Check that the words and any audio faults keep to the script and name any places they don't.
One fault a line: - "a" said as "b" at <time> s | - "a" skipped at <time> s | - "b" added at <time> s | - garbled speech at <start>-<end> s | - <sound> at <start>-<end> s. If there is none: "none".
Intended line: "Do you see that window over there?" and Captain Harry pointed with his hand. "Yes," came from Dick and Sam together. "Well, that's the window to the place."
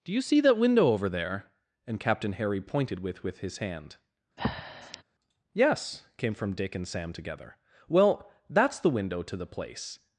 - "with" added at 3.2 s
- breath at 4.4-5.0 s